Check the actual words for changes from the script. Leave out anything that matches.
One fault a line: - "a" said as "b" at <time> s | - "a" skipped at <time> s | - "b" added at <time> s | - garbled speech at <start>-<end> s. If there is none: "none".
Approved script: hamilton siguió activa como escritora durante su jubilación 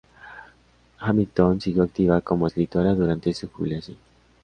none